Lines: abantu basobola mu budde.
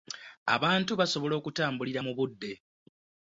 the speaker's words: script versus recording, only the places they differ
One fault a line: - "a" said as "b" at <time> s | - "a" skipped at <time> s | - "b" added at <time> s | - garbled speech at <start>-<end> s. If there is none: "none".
- "okutambulira" added at 1.4 s